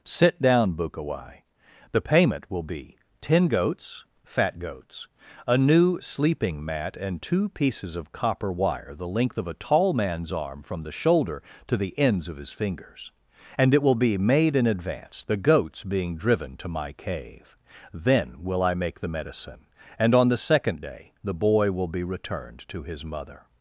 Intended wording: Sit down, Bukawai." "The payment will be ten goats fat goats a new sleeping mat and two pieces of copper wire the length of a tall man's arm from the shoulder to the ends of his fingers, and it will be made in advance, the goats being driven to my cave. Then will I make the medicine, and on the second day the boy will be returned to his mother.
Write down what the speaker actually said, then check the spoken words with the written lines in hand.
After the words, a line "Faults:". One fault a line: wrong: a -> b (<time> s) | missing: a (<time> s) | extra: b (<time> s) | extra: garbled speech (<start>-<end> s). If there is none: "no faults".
Sit down, Bukawai." "The payment will be ten goats fat goats a new sleeping mat and two pieces of copper wire the length of a tall man's arm from the shoulder to the ends of his fingers, and it will be made in advance, the goats being driven to my cave. Then will I make the medicine, and on the second day the boy will be returned to his mother.
Faults:
no faults